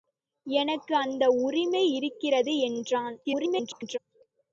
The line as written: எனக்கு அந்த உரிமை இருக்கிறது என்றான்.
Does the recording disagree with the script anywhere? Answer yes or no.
yes